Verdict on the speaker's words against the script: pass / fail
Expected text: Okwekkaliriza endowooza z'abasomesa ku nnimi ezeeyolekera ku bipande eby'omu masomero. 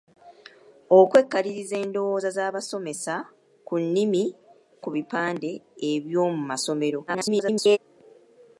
fail